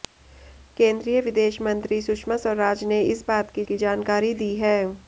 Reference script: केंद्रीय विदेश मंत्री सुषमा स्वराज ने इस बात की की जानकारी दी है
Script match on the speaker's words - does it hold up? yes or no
yes